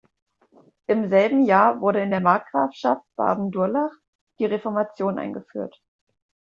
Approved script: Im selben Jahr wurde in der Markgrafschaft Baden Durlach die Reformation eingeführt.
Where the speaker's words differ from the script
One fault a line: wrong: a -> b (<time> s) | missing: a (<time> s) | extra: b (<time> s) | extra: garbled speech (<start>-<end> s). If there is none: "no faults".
no faults